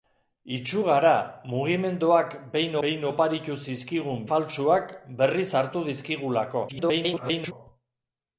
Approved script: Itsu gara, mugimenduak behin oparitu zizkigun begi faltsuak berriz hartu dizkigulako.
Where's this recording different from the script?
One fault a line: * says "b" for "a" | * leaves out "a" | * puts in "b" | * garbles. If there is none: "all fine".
* puts in "behin"
* leaves out "begi"
* garbles